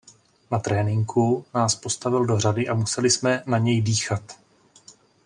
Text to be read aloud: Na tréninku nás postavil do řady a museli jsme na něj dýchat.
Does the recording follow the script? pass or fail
pass